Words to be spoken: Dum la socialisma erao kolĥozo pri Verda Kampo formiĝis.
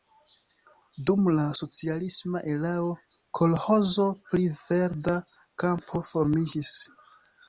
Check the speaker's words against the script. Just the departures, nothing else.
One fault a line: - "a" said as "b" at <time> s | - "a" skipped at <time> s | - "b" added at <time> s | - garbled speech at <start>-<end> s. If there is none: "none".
none